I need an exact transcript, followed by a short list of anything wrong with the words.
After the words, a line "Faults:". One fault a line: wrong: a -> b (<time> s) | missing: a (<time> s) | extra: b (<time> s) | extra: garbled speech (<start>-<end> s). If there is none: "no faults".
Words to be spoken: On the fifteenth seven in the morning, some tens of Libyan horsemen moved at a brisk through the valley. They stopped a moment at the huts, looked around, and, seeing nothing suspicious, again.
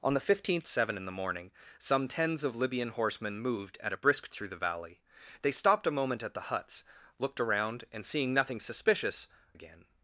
On the fifteenth seven in the morning, some tens of Libyan horsemen moved at a brisk through the valley. They stopped a moment at the huts, looked around, and, seeing nothing suspicious, again.
Faults:
no faults